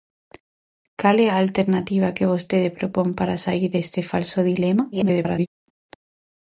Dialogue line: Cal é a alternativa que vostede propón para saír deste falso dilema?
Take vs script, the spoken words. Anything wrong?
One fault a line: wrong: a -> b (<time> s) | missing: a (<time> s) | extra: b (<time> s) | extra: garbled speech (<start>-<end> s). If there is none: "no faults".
extra: garbled speech (4.9-5.5 s)